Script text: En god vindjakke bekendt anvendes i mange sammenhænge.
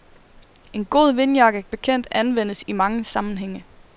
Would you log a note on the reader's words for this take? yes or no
no